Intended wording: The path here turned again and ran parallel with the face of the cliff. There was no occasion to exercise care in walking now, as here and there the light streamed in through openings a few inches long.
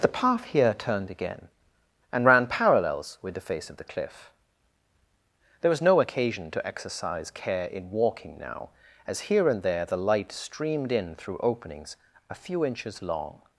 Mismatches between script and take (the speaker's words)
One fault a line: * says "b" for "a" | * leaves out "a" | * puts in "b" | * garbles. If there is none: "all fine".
* says "parallels" for "parallel"